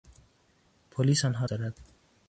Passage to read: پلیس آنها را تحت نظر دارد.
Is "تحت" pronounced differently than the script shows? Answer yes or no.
yes